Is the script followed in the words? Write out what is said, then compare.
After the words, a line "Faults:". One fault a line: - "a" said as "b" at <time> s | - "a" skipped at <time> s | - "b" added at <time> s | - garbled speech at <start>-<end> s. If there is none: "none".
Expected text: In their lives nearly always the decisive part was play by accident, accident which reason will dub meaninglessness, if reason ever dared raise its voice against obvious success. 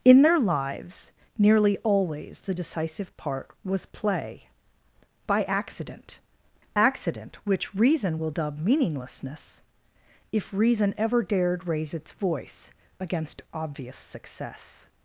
In their lives nearly always the decisive part was play by accident, accident which reason will dub meaninglessness, if reason ever dared raise its voice against obvious success.
Faults:
none